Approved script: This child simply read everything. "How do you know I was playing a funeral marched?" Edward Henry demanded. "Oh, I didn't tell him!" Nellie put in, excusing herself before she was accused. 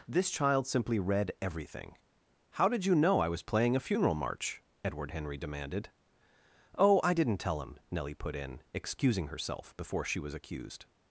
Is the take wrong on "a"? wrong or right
right